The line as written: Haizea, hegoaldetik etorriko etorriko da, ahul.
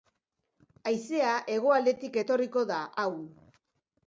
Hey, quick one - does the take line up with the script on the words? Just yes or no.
no